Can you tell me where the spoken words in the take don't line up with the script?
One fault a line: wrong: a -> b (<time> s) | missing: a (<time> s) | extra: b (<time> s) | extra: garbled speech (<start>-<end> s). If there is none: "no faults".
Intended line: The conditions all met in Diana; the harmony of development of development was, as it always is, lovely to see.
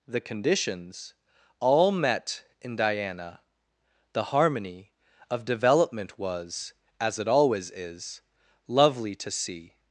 missing: of development (6.2 s)